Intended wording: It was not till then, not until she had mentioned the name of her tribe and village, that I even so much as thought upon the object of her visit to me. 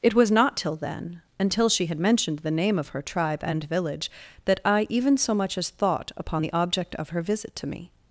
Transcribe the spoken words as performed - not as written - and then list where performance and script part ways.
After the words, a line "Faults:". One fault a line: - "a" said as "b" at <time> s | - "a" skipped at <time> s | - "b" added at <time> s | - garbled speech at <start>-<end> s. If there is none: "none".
It was not till then, until she had mentioned the name of her tribe and village, that I even so much as thought upon the object of her visit to me.
Faults:
- "not" skipped at 1.2 s